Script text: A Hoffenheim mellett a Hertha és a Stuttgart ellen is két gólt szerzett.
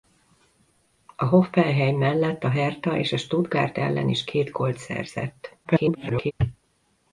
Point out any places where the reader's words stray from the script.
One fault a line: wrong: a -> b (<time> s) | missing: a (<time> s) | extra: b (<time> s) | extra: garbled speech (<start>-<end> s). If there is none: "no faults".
extra: garbled speech (5.6-6.3 s)